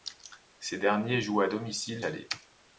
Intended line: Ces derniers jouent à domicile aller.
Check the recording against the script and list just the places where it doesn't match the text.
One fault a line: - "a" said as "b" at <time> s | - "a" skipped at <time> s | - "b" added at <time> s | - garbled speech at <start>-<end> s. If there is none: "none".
none